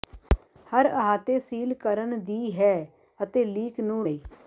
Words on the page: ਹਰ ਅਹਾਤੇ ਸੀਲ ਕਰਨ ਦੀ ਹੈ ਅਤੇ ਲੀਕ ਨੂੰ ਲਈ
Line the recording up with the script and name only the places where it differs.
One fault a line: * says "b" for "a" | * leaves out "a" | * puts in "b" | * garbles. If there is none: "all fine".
all fine